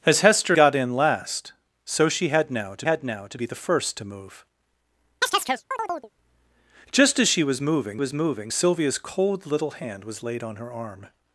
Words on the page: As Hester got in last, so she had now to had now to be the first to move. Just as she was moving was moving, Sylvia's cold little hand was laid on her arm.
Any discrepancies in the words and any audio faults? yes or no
yes